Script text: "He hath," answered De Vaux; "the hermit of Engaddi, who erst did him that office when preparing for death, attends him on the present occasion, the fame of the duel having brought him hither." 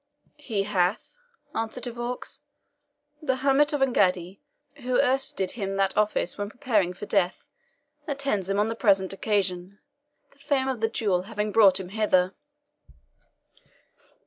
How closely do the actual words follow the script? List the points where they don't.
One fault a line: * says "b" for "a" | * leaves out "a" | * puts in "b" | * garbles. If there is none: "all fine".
all fine